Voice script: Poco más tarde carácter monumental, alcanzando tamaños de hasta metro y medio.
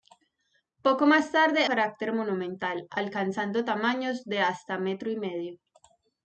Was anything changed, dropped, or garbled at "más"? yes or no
no